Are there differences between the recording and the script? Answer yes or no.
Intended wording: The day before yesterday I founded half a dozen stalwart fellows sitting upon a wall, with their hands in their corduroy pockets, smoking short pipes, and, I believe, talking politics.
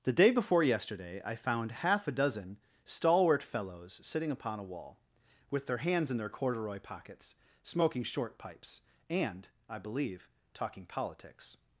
yes